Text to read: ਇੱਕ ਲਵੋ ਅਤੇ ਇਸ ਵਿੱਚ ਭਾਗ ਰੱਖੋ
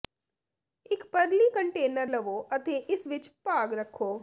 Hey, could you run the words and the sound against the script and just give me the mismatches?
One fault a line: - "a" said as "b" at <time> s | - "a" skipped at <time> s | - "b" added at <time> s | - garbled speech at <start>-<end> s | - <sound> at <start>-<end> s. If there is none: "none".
- "ਪਰਲੀ ਕੰਟੇਨਰ" added at 1.0 s